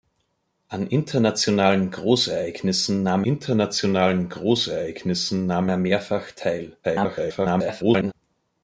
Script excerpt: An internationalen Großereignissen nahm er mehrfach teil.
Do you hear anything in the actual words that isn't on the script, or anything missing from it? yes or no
yes